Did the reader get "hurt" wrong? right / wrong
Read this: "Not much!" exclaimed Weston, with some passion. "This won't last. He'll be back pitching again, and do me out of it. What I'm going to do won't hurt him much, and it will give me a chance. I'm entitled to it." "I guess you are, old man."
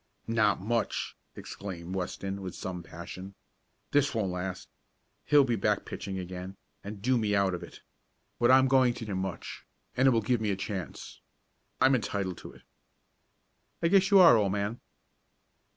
wrong